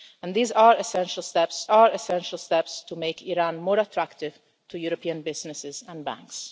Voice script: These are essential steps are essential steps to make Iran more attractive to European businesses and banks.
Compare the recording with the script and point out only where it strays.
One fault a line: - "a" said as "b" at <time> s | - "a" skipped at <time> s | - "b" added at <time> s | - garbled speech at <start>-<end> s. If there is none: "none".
none